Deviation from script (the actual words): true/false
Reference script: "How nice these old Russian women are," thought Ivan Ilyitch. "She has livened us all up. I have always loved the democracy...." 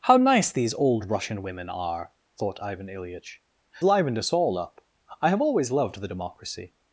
true